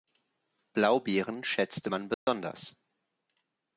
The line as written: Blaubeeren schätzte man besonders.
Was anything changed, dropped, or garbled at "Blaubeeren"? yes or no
no